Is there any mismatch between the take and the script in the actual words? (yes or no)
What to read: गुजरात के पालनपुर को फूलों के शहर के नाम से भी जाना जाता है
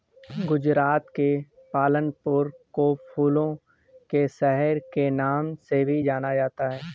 no